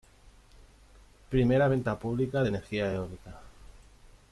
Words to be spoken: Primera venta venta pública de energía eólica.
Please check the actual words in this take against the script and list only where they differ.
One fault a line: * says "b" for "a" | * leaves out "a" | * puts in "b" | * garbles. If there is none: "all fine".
* leaves out "venta"